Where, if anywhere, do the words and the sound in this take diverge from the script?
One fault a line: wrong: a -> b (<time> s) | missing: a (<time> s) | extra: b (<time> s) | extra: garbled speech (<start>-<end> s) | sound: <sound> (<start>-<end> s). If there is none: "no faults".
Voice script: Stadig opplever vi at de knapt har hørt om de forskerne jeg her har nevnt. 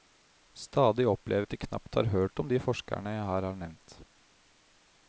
missing: vi (1.5 s)